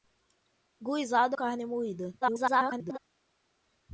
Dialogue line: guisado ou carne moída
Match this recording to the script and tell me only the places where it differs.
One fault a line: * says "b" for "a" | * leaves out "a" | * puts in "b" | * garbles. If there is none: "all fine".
* leaves out "ou"
* garbles